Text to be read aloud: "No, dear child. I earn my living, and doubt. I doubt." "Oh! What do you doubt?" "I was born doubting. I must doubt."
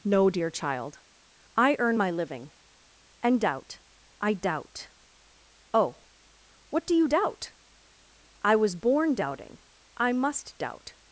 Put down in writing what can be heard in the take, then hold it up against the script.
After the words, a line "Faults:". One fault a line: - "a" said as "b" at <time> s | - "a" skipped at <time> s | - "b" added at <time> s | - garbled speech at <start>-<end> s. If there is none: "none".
"No, dear child. I earn my living, and doubt. I doubt." "Oh! What do you doubt?" "I was born doubting. I must doubt."
Faults:
none